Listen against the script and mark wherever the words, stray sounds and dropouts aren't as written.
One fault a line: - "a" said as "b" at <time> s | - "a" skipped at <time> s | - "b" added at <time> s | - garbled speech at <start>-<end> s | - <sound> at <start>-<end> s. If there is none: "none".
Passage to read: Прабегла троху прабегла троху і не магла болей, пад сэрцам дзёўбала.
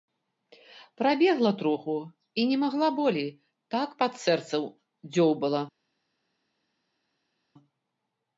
- "прабегла троху" skipped at 2.0 s
- "так" added at 3.8 s